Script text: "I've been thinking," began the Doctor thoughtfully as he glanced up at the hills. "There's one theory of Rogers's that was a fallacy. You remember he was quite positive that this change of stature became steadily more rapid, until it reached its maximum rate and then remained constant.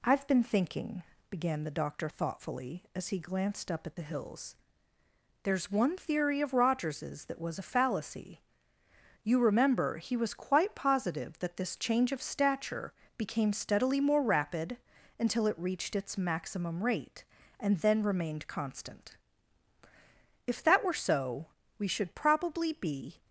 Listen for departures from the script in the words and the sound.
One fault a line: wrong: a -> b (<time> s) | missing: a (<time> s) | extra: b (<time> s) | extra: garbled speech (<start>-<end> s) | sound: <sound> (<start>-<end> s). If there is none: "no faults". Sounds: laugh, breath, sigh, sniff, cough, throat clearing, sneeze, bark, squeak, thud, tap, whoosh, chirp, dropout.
extra: If that were so we should probably be (20.5 s)